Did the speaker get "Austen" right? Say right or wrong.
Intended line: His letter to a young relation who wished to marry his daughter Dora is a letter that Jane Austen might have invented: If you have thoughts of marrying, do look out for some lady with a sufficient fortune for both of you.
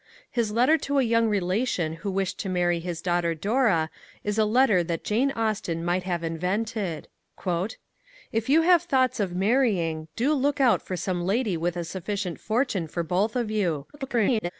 right